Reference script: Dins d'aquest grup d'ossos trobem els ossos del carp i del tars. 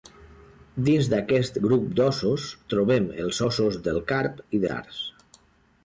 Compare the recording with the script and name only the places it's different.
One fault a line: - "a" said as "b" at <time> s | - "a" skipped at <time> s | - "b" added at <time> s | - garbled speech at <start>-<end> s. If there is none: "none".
- "del" skipped at 4.6 s